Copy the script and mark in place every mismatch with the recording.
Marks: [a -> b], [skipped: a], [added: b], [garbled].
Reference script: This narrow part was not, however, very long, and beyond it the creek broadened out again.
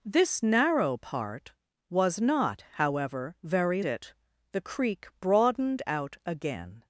This narrow part was not, however, very [skipped: long, and beyond] it the creek broadened out again.